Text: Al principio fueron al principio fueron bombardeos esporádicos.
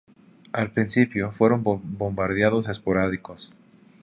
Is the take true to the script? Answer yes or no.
no